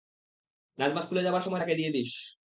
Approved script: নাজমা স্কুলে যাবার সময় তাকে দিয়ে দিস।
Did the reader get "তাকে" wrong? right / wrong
right